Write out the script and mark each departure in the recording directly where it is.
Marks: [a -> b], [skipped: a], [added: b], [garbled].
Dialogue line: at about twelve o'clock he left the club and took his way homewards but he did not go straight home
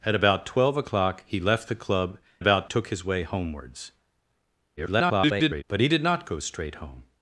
at about twelve o'clock he left the club [and -> about] took his way homewards [garbled] but he did not go straight home